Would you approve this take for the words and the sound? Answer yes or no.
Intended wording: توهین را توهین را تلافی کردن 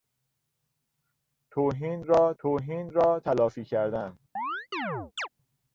no